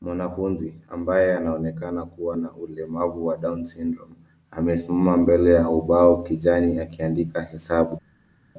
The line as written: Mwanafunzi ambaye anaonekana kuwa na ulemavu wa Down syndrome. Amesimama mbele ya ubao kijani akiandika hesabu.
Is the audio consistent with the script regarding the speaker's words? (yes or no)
yes